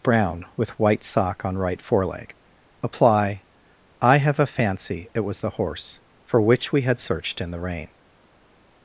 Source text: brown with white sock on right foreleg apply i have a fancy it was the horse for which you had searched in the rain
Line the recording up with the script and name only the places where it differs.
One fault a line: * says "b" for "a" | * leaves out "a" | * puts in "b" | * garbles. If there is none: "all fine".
* says "we" for "you"